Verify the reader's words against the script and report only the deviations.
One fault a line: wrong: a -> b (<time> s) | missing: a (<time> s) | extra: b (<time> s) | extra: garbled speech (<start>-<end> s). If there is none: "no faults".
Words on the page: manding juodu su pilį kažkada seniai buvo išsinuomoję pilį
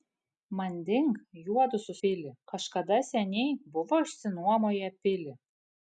no faults